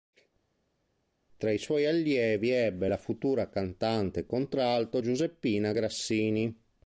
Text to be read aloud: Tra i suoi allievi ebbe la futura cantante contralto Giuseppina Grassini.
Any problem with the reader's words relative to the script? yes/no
no